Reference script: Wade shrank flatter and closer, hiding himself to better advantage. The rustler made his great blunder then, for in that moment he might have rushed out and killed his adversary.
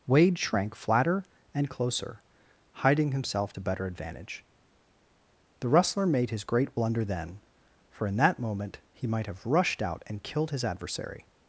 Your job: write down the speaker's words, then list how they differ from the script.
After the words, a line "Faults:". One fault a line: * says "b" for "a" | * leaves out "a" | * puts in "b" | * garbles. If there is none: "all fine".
Wade shrank flatter and closer, hiding himself to better advantage. The rustler made his great blunder then, for in that moment he might have rushed out and killed his adversary.
Faults:
all fine